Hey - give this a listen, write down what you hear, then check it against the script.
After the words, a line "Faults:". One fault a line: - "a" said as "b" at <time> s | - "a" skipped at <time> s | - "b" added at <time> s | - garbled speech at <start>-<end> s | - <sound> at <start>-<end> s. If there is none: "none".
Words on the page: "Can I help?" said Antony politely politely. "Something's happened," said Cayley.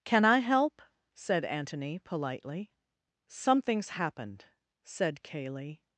"Can I help?" said Antony politely. "Something's happened," said Cayley.
Faults:
- "politely" skipped at 2.7 s